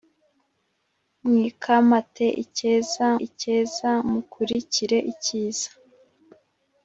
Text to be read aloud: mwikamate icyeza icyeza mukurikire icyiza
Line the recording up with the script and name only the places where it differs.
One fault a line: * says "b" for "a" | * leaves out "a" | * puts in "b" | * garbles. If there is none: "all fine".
all fine